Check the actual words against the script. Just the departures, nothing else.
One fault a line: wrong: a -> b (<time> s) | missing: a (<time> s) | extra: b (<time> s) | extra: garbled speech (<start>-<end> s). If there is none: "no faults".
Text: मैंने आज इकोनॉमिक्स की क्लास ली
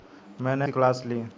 missing: आज इकोनॉमिक्स (0.7 s)